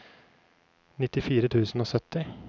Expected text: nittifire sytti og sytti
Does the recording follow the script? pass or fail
fail